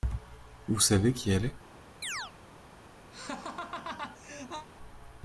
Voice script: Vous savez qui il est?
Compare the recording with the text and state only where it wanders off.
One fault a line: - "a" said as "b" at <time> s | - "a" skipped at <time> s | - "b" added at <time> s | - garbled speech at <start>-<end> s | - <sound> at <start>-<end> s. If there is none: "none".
- "il" said as "elle" at 1.3 s
- chirp at 2.0-2.3 s
- laugh at 3.1-4.7 s